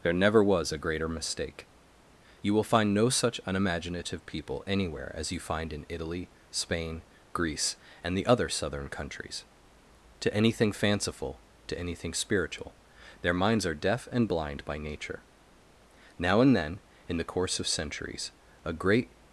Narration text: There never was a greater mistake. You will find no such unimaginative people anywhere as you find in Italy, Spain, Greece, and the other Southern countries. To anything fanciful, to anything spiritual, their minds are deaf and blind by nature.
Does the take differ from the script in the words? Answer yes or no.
yes